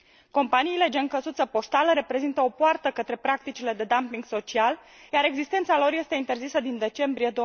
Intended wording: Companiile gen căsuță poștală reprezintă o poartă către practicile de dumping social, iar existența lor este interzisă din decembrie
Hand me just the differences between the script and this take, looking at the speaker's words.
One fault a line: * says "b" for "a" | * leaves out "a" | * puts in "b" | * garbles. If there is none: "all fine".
all fine